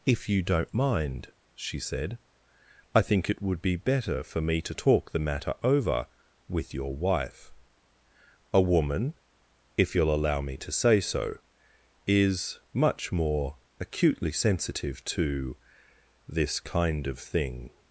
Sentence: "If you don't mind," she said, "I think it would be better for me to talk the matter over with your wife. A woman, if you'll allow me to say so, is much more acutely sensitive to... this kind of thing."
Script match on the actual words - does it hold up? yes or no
yes